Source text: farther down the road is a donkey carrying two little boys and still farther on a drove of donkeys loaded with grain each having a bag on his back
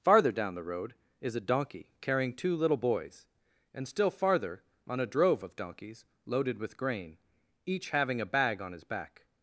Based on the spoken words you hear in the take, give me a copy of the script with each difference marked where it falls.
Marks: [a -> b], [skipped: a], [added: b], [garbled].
farther down the road is a donkey carrying two little boys and still farther on a drove of donkeys loaded with grain each having a bag on his back